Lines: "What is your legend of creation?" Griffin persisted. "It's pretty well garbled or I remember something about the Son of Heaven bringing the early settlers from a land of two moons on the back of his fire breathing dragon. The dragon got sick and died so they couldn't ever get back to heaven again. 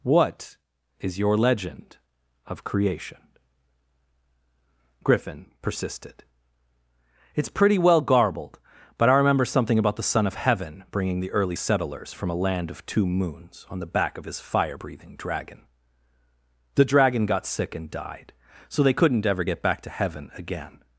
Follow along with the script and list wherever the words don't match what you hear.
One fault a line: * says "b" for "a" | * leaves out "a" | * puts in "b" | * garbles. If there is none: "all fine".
* says "but" for "or"